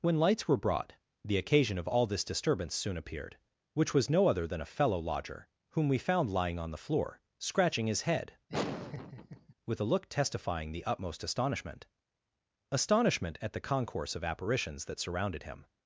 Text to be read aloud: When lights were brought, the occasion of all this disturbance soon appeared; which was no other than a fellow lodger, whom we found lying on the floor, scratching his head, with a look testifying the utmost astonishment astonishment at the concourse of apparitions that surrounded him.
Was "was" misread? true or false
false